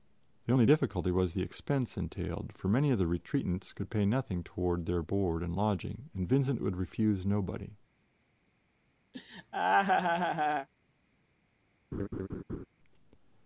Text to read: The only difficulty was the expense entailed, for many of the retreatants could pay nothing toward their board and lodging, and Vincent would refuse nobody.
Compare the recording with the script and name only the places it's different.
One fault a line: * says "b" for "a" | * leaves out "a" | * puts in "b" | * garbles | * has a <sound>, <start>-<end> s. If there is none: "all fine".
* has a laugh, 9.1-10.7 s
* has a laugh, 11.9-12.7 s